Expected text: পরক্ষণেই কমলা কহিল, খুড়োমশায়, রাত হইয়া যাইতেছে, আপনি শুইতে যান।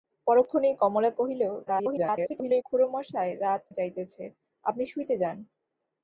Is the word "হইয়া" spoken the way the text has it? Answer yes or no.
no